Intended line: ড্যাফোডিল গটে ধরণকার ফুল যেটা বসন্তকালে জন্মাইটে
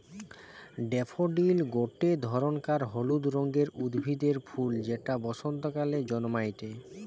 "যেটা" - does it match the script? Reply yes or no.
yes